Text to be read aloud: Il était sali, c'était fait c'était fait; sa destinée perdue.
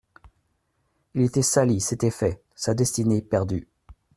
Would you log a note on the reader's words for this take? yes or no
yes